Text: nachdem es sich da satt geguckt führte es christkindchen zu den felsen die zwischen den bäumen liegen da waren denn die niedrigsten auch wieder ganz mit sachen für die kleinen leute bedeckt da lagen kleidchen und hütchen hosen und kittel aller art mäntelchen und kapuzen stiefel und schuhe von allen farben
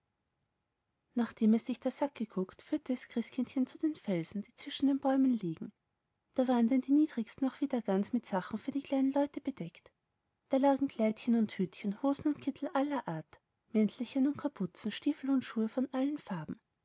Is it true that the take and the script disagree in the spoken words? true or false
false